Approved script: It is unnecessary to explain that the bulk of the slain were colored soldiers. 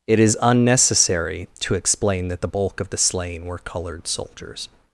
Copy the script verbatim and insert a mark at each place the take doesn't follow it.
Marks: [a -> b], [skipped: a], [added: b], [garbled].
It is unnecessary to explain that the bulk of the slain were colored soldiers.